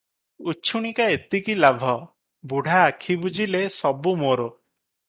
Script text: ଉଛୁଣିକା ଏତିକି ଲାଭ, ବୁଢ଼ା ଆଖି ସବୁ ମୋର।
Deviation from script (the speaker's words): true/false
true